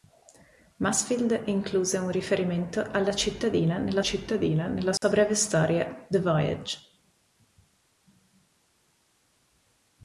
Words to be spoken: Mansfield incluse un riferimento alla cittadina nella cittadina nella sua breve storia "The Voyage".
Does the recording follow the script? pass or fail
pass